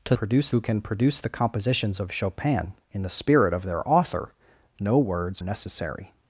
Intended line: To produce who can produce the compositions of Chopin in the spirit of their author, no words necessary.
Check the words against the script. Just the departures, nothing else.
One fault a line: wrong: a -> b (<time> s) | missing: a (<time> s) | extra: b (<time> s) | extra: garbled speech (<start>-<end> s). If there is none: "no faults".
no faults